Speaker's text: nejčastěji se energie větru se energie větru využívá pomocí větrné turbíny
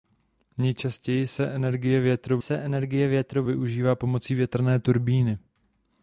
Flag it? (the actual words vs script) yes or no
no